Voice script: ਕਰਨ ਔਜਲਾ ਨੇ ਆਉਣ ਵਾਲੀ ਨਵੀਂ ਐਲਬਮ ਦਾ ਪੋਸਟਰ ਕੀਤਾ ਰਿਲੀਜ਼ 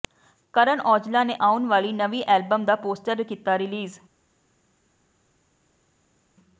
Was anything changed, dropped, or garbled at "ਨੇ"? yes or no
no